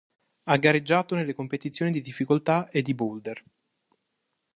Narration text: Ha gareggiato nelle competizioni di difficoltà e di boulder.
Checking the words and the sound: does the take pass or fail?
pass